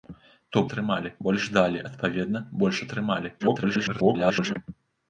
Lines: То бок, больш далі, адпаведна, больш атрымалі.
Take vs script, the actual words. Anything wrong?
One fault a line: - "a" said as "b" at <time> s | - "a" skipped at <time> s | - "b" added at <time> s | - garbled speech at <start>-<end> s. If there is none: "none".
- "бок" said as "атрымалі" at 0.7 s
- garbled speech at 3.4-4.5 s